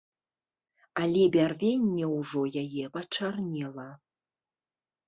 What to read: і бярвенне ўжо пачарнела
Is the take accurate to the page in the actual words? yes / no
no